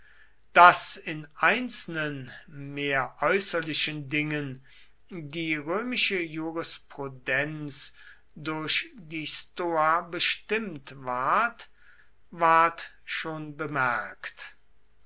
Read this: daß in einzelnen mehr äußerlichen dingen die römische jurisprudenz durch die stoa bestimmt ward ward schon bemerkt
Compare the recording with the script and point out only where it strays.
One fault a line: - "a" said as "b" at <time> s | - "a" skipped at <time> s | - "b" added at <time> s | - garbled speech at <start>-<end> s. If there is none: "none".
none